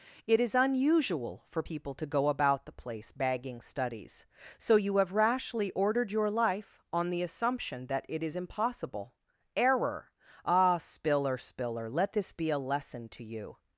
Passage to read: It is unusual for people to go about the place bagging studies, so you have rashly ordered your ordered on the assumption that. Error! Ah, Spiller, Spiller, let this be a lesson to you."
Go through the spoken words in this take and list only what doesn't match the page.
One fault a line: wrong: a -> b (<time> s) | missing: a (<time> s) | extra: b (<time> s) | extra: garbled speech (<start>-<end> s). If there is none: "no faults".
wrong: ordered -> life (6.3 s)
extra: it is impossible (8.1 s)